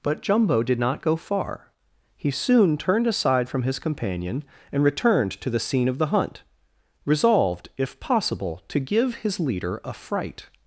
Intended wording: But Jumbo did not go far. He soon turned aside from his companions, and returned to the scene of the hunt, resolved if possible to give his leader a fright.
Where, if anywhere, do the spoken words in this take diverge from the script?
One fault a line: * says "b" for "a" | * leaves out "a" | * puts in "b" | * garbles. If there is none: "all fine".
* says "companion" for "companions"